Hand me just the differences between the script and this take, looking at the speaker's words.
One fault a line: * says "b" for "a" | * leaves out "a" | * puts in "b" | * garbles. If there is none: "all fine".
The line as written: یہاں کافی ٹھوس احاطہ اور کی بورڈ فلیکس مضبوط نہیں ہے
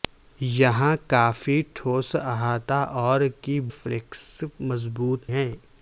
* leaves out "بورڈ"
* leaves out "نہیں"